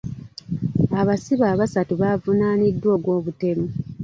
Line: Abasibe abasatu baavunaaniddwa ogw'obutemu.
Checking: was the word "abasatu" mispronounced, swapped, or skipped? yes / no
no